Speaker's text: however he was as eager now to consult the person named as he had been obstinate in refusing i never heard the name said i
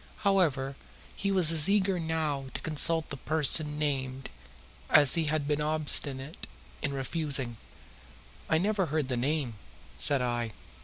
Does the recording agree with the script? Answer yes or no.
yes